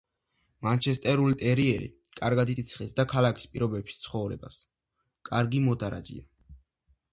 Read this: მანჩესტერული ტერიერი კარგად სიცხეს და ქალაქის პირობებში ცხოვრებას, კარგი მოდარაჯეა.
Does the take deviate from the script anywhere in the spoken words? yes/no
no